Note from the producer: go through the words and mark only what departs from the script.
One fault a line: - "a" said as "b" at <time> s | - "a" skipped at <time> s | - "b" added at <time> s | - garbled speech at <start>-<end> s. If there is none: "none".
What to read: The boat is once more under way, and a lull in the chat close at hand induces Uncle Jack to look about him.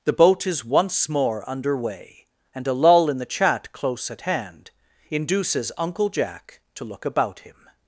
none